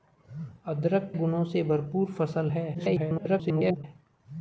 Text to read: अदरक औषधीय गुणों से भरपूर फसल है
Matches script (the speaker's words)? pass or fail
fail